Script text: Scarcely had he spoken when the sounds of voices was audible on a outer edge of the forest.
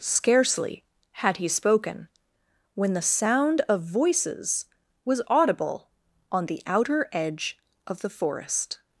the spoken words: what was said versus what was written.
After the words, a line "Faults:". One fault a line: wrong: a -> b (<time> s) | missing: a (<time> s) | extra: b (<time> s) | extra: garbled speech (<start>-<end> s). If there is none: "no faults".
Scarcely had he spoken when the sound of voices was audible on the outer edge of the forest.
Faults:
wrong: sounds -> sound (3.0 s)
wrong: a -> the (6.5 s)